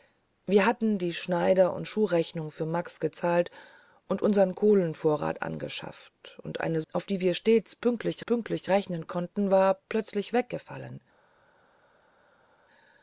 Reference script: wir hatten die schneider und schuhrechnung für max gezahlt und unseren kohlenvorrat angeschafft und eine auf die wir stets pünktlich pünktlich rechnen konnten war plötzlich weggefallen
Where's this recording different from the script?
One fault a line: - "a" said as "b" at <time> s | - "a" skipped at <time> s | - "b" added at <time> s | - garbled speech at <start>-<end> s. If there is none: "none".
none